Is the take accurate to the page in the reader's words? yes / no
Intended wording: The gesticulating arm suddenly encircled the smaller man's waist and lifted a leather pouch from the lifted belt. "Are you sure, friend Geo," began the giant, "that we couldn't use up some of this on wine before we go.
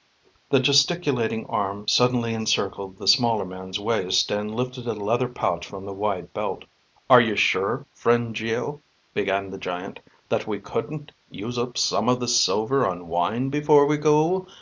no